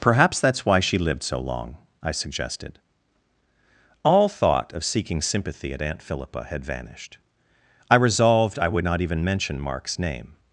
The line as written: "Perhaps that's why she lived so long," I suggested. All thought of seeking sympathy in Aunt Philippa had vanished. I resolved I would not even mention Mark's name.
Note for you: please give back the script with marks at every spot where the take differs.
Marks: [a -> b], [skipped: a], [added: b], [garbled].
"Perhaps that's why she lived so long," I suggested. All thought of seeking sympathy [in -> at] Aunt Philippa had vanished. I resolved I would not even mention Mark's name.